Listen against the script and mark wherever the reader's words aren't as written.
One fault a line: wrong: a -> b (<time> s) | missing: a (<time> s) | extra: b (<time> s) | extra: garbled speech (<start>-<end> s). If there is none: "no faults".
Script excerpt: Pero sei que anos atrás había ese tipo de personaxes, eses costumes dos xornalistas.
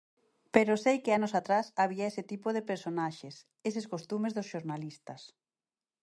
no faults